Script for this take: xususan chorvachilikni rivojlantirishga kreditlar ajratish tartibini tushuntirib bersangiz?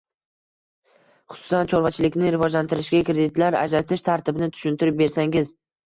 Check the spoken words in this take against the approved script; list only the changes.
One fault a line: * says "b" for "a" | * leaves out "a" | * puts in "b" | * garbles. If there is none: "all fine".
all fine